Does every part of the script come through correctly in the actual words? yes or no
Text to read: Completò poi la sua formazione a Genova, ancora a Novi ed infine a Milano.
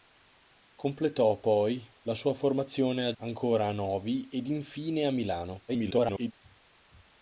no